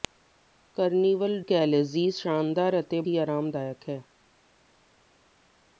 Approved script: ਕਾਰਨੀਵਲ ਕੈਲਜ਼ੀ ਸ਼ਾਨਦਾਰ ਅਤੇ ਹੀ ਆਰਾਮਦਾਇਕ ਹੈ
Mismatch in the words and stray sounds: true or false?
false